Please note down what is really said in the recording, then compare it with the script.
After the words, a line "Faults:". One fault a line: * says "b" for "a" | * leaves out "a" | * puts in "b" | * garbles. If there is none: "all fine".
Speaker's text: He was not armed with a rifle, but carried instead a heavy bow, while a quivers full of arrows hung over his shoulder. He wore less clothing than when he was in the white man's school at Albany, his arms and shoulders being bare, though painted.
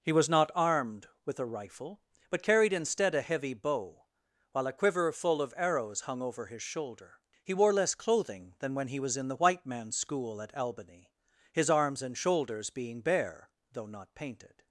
He was not armed with a rifle, but carried instead a heavy bow, while a quiver full of arrows hung over his shoulder. He wore less clothing than when he was in the white man's school at Albany, his arms and shoulders being bare, though not painted.
Faults:
* says "quiver" for "quivers"
* puts in "not"